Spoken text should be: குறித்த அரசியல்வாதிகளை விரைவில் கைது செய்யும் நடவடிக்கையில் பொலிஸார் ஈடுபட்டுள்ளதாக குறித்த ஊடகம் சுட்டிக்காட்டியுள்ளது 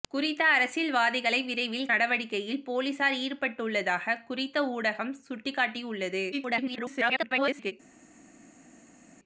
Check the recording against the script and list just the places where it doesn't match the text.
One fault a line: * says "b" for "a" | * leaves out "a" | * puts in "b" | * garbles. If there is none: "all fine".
* leaves out "கைது செய்யும்"
* garbles